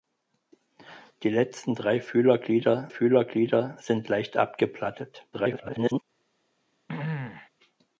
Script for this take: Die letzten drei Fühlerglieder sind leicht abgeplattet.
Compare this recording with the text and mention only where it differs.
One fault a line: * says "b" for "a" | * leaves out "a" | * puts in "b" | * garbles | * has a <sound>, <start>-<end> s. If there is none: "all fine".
* puts in "Fühlerglieder"
* garbles
* has a throat clearing, 6.9-7.5 s